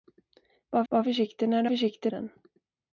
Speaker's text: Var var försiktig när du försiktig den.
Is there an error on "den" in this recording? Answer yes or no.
no